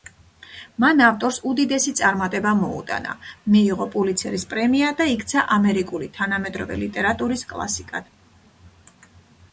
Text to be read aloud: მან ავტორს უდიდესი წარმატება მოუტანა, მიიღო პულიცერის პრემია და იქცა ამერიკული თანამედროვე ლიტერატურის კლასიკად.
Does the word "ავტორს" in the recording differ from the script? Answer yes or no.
no